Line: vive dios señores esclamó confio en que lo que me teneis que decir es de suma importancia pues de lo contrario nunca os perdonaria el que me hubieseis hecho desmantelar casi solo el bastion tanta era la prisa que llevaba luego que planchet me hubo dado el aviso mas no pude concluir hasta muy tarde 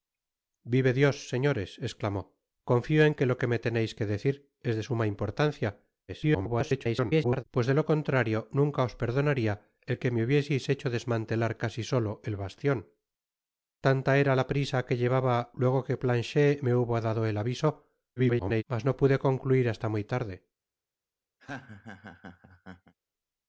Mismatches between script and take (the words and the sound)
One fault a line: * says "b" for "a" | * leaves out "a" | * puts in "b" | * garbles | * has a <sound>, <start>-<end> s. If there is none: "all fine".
* garbles
* garbles
* has a laugh, 21.4-22.9 s